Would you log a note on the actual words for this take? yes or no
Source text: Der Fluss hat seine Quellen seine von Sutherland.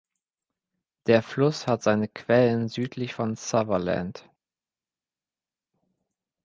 yes